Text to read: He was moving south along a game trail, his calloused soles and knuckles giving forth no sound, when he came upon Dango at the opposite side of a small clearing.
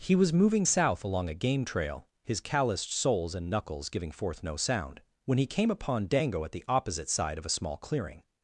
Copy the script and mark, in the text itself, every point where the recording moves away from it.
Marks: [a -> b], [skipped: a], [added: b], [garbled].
He was moving south along a game trail, his calloused soles and knuckles giving forth no sound, when he came upon Dango at the opposite side of a small clearing.